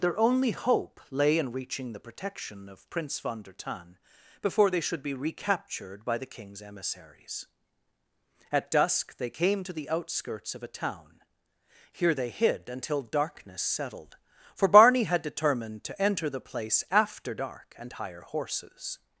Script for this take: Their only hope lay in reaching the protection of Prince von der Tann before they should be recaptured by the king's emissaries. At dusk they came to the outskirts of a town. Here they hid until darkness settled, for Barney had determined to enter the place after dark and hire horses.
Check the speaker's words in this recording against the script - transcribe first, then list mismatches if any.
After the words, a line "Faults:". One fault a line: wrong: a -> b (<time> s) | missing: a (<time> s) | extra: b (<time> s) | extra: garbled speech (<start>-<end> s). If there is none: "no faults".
Their only hope lay in reaching the protection of Prince von der Tann before they should be recaptured by the king's emissaries. At dusk they came to the outskirts of a town. Here they hid until darkness settled, for Barney had determined to enter the place after dark and hire horses.
Faults:
no faults